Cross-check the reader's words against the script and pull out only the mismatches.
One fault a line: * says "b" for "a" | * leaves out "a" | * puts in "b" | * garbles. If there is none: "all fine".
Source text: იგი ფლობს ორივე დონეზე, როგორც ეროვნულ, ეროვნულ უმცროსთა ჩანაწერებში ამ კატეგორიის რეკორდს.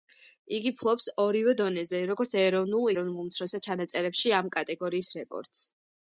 all fine